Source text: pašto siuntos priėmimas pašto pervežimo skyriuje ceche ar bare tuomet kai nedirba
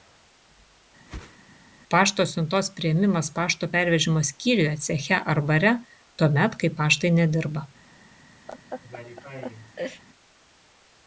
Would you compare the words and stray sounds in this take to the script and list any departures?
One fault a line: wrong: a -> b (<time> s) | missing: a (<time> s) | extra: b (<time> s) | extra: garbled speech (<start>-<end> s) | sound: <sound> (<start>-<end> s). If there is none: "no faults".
sound: whoosh (1.1-1.4 s)
extra: paštai (6.8 s)
sound: laugh (8.5-10.0 s)